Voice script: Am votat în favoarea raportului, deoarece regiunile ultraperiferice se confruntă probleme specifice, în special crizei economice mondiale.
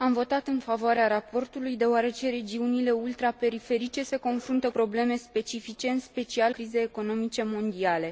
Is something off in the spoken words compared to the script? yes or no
no